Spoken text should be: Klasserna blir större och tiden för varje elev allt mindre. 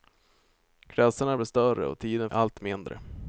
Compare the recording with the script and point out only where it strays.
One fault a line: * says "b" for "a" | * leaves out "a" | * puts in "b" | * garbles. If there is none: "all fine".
* leaves out "för varje elev"